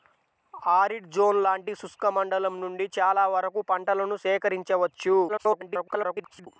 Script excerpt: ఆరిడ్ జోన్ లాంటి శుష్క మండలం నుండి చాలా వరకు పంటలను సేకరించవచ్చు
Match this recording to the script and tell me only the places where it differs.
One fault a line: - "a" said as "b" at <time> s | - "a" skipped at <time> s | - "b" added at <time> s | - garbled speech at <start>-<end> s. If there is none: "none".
- garbled speech at 5.3-6.5 s